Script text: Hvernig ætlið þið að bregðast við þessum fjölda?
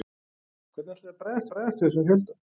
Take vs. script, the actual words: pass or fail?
fail